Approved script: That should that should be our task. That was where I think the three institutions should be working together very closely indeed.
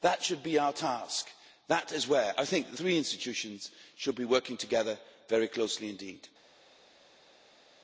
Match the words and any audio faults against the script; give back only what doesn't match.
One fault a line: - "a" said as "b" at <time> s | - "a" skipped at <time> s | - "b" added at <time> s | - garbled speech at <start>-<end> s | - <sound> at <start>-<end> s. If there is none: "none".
- "that should" skipped at 0.4 s
- "was" said as "is" at 1.9 s